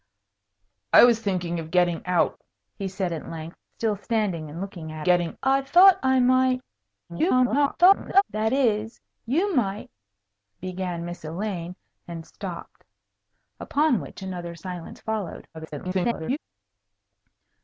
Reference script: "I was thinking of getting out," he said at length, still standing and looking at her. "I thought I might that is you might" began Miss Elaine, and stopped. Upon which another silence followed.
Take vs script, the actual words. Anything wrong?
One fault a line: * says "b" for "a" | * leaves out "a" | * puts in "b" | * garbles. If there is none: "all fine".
* says "getting" for "her"
* garbles
* garbles